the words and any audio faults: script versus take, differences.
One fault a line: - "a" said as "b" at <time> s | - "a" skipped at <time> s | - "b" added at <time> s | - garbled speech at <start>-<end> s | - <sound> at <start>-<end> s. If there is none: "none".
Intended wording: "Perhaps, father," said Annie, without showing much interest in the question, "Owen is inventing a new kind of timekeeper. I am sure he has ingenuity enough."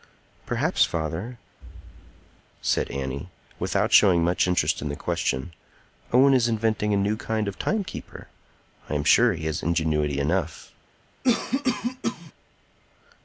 - thud at 1.6-2.4 s
- cough at 11.2-12.3 s